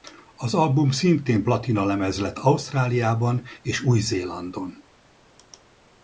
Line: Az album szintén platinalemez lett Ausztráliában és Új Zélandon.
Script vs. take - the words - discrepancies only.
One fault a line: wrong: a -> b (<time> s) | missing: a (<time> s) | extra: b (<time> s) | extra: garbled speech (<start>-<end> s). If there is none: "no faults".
no faults